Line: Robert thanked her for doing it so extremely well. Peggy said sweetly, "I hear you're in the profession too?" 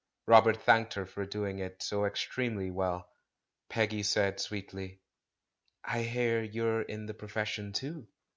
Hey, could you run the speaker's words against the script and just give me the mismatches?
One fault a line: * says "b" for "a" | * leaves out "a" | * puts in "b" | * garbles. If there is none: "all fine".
all fine